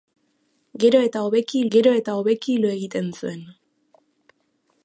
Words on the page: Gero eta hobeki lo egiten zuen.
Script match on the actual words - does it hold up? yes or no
no